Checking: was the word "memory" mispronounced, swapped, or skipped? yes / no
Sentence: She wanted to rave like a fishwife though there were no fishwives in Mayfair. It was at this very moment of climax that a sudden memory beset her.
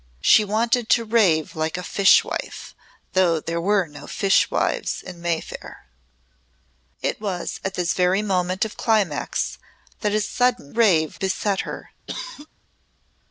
yes